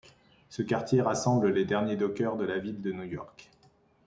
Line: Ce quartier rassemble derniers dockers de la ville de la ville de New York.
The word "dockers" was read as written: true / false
true